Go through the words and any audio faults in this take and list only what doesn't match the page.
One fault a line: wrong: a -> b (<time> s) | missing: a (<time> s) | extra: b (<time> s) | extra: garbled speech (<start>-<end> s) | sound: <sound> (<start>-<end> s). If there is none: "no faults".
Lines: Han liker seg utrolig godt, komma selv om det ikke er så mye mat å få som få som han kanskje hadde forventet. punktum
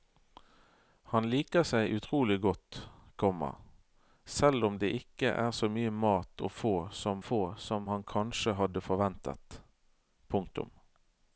no faults